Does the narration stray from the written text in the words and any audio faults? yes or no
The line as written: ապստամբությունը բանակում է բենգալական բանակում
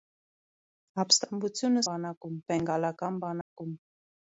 yes